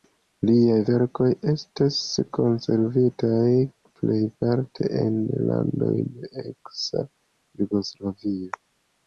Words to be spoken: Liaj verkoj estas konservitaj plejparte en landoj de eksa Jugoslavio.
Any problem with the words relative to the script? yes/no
no